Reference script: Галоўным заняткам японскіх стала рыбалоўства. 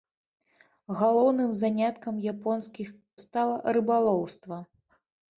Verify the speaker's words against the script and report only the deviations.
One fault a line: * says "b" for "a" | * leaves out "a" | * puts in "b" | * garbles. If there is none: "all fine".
all fine